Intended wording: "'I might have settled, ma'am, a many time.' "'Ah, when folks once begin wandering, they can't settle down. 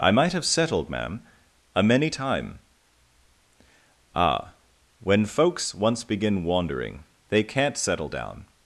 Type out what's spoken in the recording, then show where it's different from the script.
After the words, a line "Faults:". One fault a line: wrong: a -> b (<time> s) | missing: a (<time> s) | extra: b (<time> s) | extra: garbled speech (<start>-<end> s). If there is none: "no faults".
"'I might have settled, ma'am, a many time.' "'Ah, when folks once begin wandering, they can't settle down.
Faults:
no faults